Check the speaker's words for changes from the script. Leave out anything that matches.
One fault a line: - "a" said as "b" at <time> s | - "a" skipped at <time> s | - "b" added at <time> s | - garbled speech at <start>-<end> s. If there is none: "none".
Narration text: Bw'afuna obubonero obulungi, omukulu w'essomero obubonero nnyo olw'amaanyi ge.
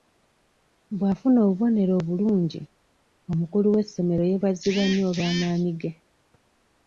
- "obubonero" said as "yeebazibwa" at 4.3 s